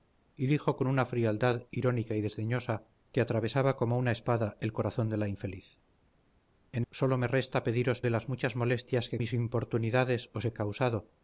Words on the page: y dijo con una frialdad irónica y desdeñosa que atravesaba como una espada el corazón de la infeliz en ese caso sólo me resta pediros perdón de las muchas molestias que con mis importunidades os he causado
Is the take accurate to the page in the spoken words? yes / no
no